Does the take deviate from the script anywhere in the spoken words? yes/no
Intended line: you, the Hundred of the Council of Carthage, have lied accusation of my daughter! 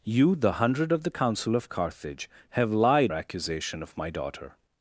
no